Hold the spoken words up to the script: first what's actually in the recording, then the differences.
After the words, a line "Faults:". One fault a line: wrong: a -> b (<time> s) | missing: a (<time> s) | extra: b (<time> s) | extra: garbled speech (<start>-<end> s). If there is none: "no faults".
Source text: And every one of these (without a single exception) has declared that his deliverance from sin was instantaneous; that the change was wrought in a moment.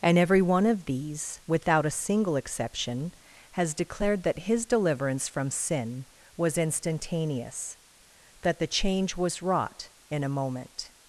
And every one of these (without a single exception) has declared that his deliverance from sin was instantaneous; that the change was wrought in a moment.
Faults:
no faults